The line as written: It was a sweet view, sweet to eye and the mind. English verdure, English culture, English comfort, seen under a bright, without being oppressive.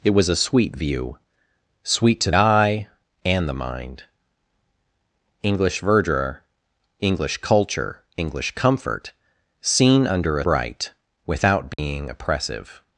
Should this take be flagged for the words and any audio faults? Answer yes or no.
yes